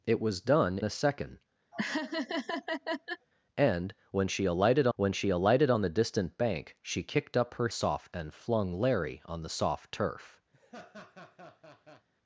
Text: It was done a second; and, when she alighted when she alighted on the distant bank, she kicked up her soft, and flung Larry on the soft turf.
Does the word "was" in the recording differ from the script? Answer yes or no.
no